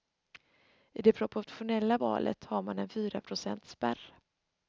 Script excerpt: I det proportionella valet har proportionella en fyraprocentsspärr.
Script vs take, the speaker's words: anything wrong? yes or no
yes